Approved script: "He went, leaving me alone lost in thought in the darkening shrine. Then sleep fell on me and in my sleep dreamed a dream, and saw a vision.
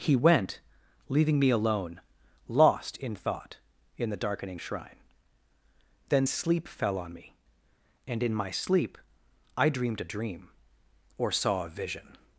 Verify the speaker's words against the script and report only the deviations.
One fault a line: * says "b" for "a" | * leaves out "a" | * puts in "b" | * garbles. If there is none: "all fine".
* puts in "I"
* says "or" for "and"